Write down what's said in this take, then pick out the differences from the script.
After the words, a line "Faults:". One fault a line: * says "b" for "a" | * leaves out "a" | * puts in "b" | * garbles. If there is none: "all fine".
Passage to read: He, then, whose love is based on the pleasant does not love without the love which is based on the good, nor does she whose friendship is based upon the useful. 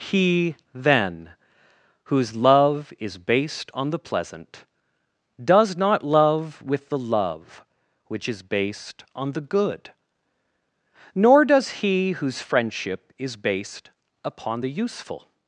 He, then, whose love is based on the pleasant does not love with the love which is based on the good, nor does he whose friendship is based upon the useful.
Faults:
* says "with" for "without"
* says "he" for "she"